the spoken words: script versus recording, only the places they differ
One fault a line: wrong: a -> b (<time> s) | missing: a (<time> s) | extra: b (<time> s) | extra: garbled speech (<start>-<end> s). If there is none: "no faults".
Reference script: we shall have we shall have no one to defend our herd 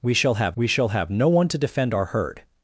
no faults